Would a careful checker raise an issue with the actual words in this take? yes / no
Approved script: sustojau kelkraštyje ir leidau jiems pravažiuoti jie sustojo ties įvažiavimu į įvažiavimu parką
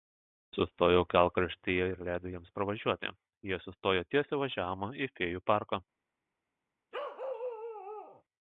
yes